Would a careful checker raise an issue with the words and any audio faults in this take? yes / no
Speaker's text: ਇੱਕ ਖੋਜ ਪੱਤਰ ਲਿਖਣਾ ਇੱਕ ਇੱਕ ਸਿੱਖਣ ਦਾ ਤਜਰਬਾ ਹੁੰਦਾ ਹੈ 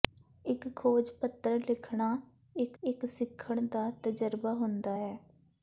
no